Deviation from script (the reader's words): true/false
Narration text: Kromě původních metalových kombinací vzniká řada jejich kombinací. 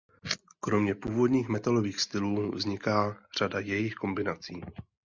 true